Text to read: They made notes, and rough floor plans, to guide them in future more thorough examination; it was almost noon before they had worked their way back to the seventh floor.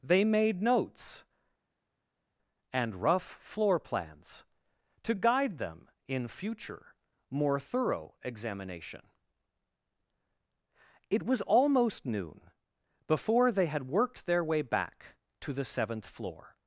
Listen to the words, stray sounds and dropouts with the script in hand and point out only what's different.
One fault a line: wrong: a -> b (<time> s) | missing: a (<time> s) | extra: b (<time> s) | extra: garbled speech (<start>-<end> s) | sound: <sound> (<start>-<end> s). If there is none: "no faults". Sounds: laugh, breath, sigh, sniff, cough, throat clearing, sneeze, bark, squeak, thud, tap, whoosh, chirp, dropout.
no faults